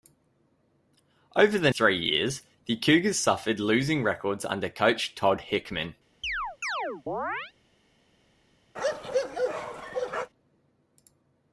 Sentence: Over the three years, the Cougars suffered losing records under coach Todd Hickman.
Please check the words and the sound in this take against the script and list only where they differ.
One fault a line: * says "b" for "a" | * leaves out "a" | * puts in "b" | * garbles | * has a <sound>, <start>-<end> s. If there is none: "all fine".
* has a chirp, 6.2-7.5 s
* has a bark, 8.8-10.3 s